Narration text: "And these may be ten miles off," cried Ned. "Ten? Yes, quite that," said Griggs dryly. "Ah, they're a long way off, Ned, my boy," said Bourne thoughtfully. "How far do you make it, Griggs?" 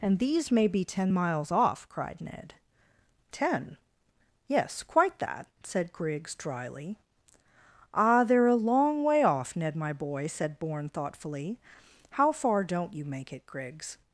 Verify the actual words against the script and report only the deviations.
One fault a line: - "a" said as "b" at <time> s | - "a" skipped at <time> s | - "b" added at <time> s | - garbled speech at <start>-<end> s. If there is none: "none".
- "do" said as "don't" at 12.6 s